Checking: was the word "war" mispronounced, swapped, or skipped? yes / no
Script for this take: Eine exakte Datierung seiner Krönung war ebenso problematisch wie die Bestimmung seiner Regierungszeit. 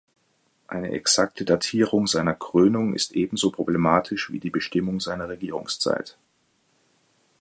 yes